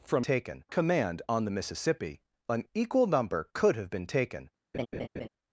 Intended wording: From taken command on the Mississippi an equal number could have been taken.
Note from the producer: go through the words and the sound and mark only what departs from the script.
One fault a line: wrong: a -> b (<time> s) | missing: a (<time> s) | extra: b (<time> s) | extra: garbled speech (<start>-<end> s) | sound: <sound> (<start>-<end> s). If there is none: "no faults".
sound: laugh (4.7-5.3 s)